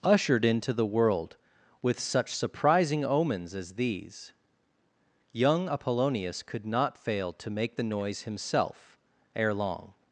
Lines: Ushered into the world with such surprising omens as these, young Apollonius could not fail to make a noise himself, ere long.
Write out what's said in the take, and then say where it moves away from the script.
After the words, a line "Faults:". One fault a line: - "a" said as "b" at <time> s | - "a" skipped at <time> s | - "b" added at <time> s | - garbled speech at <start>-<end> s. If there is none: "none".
Ushered into the world with such surprising omens as these, young Apollonius could not fail to make the noise himself, ere long.
Faults:
- "a" said as "the" at 7.8 s